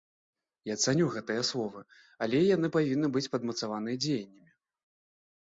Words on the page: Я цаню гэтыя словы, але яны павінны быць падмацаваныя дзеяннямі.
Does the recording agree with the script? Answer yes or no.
yes